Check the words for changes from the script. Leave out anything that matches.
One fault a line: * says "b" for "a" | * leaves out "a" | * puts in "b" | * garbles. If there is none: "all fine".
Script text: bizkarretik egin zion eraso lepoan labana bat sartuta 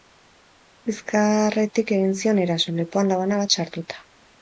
all fine